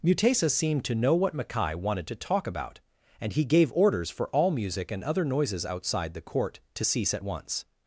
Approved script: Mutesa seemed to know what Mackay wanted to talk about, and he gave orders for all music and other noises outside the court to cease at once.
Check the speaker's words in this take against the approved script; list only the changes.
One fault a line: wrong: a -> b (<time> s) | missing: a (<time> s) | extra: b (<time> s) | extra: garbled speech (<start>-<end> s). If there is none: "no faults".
no faults